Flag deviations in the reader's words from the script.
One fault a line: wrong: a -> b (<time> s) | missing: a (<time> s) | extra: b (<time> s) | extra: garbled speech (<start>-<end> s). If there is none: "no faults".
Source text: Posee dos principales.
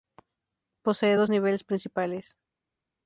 extra: niveles (1.3 s)